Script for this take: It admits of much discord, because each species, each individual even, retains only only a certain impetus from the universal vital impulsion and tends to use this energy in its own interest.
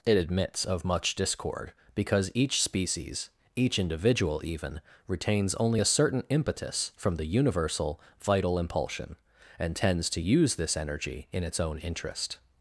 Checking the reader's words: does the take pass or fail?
fail